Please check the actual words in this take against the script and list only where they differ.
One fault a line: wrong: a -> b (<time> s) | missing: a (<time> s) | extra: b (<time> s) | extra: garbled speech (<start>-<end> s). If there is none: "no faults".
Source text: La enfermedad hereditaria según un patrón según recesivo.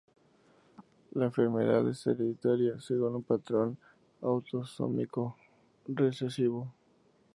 extra: es (1.9 s)
wrong: según -> autosómico (4.2 s)